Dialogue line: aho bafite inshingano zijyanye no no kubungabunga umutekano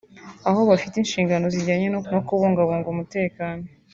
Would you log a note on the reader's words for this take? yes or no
no